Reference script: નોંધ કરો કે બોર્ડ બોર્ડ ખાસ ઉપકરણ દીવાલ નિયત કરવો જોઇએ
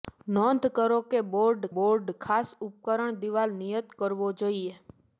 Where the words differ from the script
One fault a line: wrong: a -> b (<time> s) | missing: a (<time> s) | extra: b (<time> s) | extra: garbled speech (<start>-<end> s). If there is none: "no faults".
no faults